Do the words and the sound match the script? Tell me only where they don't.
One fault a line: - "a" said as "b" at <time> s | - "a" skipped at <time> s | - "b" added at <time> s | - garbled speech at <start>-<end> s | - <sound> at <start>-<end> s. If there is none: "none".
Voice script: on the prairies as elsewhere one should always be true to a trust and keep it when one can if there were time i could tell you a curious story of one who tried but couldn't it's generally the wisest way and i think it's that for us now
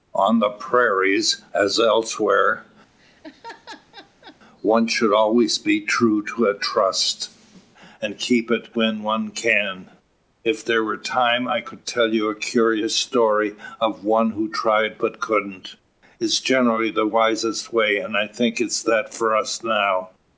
- laugh at 3.0-4.4 s